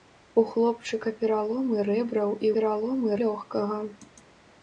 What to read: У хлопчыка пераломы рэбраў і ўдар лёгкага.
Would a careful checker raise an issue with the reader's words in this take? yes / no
yes